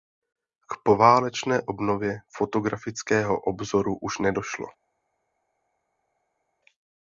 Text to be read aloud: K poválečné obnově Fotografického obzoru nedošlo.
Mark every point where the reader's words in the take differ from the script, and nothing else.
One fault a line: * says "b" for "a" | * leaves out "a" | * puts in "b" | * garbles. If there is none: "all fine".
* puts in "už"